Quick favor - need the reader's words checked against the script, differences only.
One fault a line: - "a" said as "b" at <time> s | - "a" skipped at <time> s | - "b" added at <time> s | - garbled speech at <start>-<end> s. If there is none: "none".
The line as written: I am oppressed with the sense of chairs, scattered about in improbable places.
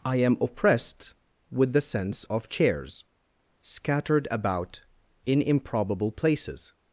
none